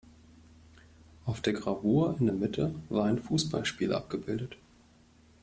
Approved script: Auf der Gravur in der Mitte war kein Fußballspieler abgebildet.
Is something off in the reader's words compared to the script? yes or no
yes